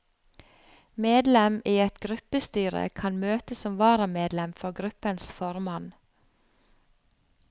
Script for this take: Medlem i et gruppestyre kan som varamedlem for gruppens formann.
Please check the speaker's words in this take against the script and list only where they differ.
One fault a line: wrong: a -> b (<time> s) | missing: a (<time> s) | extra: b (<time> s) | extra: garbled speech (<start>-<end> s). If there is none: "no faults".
extra: møte (3.2 s)